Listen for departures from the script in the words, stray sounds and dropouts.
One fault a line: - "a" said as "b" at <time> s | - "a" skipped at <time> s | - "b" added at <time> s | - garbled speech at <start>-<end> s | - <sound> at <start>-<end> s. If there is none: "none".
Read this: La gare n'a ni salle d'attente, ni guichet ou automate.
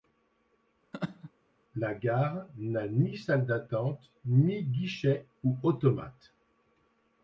- laugh at 0.9-1.3 s